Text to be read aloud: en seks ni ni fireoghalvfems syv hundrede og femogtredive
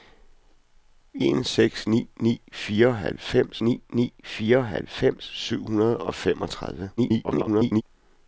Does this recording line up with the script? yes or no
no